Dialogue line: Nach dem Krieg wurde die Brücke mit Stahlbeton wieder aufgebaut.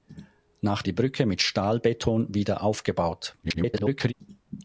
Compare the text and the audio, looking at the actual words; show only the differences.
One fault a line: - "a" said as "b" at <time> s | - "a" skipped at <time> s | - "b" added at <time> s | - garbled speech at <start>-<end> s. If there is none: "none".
- "dem Krieg wurde" skipped at 0.8 s
- garbled speech at 3.4-4.1 s